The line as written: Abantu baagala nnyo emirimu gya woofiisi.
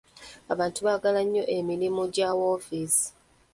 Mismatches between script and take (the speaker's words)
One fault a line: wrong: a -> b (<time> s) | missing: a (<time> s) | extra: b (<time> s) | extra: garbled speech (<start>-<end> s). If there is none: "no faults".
no faults